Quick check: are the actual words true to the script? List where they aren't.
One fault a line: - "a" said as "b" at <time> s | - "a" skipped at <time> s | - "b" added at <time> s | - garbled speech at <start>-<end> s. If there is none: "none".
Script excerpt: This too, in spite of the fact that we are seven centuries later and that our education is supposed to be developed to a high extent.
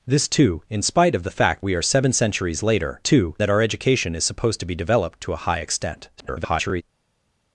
- "that" skipped at 1.6 s
- "and" said as "too" at 3.0 s
- garbled speech at 6.2-6.8 s